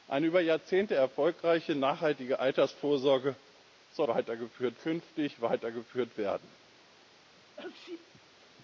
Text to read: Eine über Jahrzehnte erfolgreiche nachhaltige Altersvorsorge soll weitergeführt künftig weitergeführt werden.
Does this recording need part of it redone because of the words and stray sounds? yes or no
yes